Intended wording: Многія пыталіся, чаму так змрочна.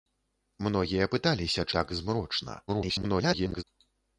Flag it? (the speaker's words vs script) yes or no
yes